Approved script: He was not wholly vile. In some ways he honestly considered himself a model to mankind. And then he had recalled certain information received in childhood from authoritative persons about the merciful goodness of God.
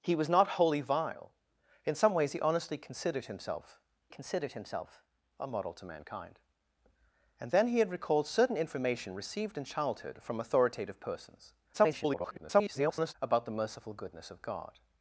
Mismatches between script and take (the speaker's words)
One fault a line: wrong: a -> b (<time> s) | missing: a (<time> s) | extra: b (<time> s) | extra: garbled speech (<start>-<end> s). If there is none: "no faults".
extra: considered himself (4.1 s)
extra: garbled speech (11.7-13.1 s)